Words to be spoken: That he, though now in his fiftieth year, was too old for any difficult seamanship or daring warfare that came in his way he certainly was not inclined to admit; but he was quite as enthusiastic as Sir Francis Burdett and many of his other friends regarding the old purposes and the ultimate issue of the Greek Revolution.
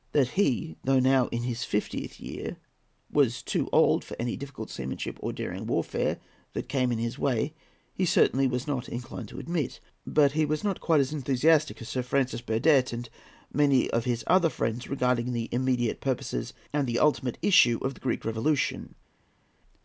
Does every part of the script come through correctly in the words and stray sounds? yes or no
no